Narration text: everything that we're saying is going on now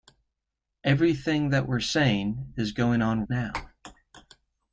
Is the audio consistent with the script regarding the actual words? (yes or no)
yes